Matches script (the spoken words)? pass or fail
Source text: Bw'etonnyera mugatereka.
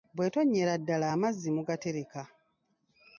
fail